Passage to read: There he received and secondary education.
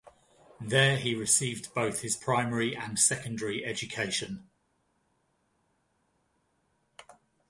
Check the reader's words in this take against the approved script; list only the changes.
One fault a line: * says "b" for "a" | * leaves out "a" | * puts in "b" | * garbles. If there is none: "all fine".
* puts in "both his primary"